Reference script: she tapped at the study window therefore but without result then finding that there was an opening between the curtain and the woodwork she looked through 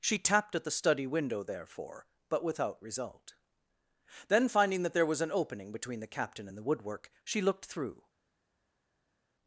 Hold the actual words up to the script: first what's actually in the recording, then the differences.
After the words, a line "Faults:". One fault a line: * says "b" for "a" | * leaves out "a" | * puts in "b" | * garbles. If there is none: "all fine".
she tapped at the study window therefore but without result then finding that there was an opening between the captain and the woodwork she looked through
Faults:
* says "captain" for "curtain"